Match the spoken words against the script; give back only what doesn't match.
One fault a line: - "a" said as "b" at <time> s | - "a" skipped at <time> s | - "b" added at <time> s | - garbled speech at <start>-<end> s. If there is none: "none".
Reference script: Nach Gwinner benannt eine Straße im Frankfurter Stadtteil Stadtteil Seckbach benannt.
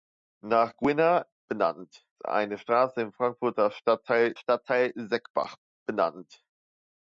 none